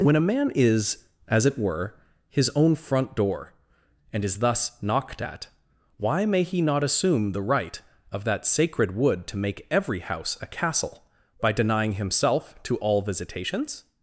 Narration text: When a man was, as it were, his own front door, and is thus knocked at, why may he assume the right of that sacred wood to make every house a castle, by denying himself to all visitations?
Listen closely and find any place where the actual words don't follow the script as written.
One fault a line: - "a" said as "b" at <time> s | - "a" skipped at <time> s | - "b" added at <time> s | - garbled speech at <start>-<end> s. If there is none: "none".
- "was" said as "is" at 0.6 s
- "not" added at 6.6 s